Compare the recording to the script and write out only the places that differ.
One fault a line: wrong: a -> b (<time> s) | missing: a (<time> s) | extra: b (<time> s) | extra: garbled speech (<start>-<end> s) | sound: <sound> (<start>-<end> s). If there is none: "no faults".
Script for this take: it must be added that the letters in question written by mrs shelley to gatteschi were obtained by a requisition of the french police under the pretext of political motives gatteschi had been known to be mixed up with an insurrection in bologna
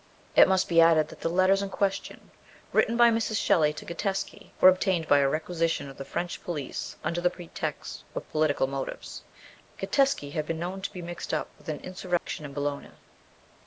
sound: dropout (12.2-12.3 s)